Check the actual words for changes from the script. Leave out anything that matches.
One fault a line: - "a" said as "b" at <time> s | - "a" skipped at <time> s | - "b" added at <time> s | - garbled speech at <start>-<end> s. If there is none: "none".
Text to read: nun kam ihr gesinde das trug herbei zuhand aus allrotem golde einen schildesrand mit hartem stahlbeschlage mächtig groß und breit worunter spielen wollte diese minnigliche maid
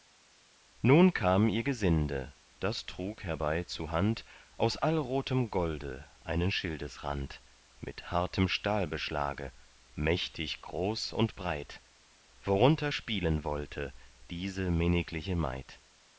none